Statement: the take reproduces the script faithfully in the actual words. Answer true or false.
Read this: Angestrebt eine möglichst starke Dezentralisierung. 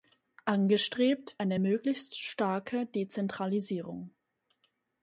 true